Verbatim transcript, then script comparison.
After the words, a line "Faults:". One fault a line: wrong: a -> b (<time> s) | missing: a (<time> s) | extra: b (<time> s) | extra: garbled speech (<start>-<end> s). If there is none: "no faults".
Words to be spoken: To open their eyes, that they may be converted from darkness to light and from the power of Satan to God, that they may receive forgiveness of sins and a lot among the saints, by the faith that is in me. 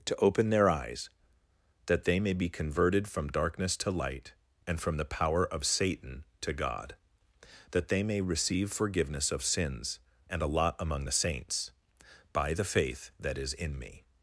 To open their eyes, that they may be converted from darkness to light and from the power of Satan to God, that they may receive forgiveness of sins and a lot among the saints, by the faith that is in me.
Faults:
no faults